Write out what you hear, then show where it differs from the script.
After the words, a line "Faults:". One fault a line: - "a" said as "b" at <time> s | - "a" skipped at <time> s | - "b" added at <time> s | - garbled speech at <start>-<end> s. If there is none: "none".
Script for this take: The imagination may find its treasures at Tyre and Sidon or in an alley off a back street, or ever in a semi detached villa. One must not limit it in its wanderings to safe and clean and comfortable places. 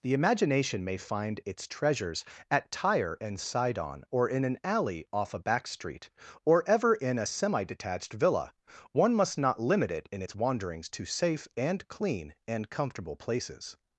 The imagination may find its treasures at Tyre and Sidon or in an alley off a back street, or ever in a semi detached villa. One must not limit it in its wanderings to safe and clean and comfortable places.
Faults:
none